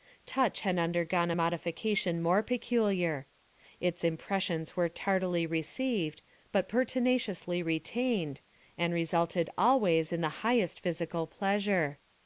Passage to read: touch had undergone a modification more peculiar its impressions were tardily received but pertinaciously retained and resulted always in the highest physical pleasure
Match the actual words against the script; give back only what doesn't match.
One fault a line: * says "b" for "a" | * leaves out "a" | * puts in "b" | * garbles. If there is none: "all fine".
all fine